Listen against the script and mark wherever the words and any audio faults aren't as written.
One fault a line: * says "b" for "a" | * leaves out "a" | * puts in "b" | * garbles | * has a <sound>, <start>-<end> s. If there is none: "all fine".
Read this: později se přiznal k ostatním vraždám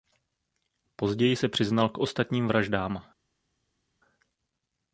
all fine